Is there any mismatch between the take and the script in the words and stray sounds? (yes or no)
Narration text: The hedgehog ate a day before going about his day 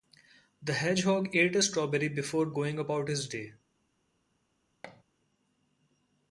yes